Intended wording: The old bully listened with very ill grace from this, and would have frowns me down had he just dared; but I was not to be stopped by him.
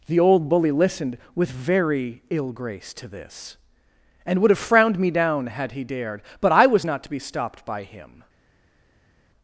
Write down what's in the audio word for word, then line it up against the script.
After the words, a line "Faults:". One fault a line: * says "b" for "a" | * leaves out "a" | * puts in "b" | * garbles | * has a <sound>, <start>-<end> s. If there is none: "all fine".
The old bully listened with very ill grace to this, and would have frowned me down had he dared; but I was not to be stopped by him.
Faults:
* says "to" for "from"
* says "frowned" for "frowns"
* leaves out "just"